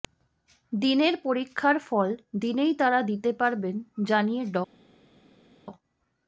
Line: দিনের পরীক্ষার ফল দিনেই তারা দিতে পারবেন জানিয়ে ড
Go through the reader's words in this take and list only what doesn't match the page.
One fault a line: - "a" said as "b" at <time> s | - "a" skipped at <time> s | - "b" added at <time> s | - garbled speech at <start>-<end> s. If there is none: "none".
none